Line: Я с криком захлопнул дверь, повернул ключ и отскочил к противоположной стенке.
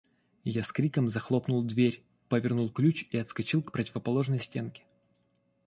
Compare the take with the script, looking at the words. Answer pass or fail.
pass